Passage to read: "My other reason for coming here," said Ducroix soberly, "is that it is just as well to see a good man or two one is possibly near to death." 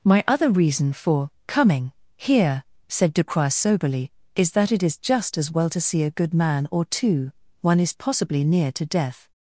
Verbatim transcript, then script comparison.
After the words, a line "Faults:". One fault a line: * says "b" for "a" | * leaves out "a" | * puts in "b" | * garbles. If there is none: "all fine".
"My other reason for coming here," said Ducroix soberly, "is that it is just as well to see a good man or two one is possibly near to death."
Faults:
all fine